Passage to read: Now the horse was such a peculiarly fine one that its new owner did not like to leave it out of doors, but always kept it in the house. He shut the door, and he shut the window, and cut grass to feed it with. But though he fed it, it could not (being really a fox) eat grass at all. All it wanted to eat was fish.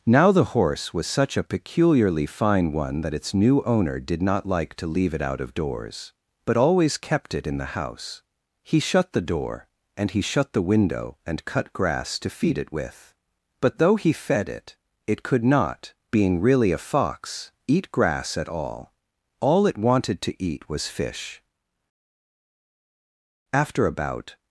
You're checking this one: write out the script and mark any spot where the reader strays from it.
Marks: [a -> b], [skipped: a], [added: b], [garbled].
Now the horse was such a peculiarly fine one that its new owner did not like to leave it out of doors, but always kept it in the house. He shut the door, and he shut the window, and cut grass to feed it with. But though he fed it, it could not (being really a fox) eat grass at all. All it wanted to eat was fish. [added: After about]